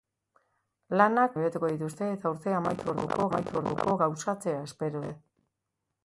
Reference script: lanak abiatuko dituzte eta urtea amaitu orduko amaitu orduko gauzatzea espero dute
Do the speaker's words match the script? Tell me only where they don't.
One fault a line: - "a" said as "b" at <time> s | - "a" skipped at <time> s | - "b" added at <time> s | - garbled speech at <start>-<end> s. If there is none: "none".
none